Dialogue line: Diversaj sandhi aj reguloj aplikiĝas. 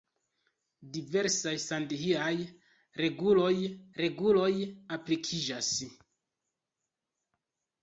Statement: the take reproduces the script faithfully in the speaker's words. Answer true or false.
false